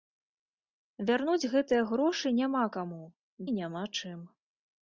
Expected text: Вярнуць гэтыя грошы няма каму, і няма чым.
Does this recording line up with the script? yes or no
yes